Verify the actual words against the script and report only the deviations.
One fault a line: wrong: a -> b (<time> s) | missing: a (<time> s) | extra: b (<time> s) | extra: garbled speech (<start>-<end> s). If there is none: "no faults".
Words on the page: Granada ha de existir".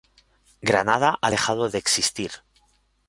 extra: dejado (1.3 s)